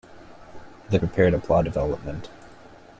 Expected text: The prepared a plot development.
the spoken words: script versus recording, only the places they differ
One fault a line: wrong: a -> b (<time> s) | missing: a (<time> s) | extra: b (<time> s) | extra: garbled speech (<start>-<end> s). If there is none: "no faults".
no faults